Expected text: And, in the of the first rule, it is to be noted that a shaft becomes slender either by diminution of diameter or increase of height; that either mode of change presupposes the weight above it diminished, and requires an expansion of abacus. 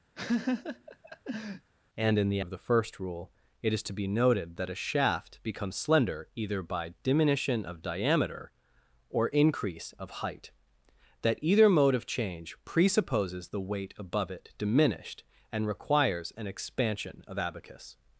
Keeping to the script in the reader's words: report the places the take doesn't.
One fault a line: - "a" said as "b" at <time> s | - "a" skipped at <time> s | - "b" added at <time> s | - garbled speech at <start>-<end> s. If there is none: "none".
none